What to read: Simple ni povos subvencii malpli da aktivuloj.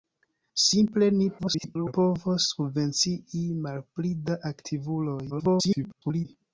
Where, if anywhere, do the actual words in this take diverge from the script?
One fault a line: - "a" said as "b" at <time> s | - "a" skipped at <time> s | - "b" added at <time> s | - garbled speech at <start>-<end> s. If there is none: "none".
- garbled speech at 1.4-1.9 s
- garbled speech at 5.3-6.3 s